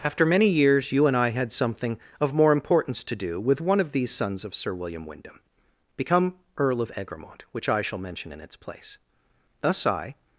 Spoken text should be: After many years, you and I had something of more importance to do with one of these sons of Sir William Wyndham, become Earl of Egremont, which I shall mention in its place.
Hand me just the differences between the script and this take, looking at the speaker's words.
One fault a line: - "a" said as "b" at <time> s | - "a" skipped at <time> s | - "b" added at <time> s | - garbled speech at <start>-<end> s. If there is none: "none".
- "Thus I" added at 9.6 s